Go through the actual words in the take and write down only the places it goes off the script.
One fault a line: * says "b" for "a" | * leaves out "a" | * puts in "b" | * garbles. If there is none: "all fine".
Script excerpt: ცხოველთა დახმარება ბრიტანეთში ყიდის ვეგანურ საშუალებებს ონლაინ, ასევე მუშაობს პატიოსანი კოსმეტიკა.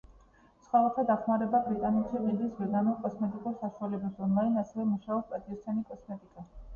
* puts in "კოსმეტიკურ"